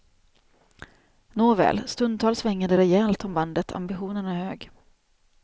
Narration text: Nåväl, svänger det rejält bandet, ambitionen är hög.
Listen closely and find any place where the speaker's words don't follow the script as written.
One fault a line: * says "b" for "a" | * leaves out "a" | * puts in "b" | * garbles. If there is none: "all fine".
* puts in "stundtals"
* puts in "om"